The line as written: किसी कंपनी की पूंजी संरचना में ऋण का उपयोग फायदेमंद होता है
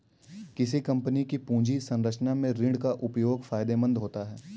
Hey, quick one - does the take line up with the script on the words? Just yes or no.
yes